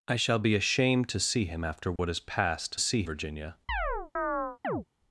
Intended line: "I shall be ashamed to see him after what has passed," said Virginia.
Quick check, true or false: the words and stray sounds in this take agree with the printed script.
false